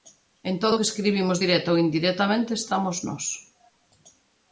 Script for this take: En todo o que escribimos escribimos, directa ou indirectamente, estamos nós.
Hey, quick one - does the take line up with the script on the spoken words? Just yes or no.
no